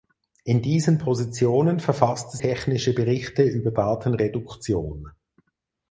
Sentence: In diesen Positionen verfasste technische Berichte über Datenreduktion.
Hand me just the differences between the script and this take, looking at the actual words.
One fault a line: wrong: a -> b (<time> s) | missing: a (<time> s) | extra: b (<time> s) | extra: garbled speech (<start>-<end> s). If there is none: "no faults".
no faults